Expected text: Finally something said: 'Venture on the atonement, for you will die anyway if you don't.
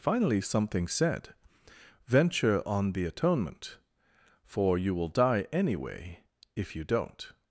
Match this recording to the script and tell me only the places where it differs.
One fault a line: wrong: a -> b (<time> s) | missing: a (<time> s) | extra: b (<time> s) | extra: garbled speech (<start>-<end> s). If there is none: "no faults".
no faults